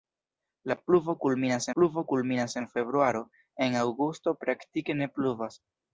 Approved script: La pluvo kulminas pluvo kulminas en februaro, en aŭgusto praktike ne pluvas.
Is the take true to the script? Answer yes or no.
yes